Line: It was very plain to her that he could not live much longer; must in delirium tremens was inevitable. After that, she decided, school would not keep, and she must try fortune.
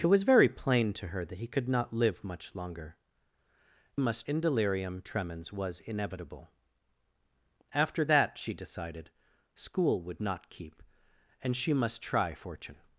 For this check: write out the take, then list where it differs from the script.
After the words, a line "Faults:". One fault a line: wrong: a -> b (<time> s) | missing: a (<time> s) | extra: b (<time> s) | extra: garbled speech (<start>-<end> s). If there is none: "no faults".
It was very plain to her that he could not live much longer; must in delirium tremens was inevitable. After that, she decided, school would not keep, and she must try fortune.
Faults:
no faults